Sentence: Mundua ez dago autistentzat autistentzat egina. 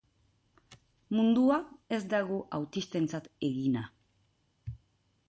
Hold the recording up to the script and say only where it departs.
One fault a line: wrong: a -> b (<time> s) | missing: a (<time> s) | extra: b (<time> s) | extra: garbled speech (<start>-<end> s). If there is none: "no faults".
missing: autistentzat (3.3 s)